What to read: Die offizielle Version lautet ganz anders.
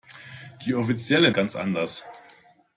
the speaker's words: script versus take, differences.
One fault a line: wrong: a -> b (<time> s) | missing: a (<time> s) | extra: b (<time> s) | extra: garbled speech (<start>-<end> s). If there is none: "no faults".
missing: Version lautet (1.3 s)